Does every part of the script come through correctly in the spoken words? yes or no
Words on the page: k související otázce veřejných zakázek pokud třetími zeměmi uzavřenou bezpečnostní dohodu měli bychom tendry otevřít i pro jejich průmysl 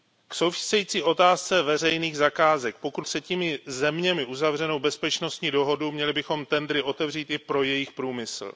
yes